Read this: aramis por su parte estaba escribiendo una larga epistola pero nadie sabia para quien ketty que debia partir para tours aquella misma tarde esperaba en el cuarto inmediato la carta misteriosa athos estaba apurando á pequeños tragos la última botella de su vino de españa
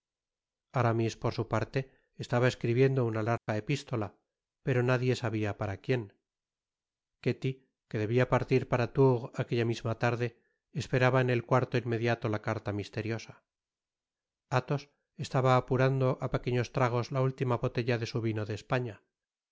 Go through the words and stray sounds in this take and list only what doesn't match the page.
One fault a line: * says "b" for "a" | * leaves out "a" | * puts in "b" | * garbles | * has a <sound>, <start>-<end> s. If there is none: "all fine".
* has a dropout, 3.4-3.5 s